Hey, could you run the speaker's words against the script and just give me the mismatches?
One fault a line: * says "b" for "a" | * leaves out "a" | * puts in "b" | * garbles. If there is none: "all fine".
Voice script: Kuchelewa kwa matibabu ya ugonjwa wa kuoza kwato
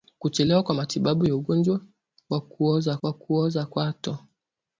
* puts in "wa kuoza"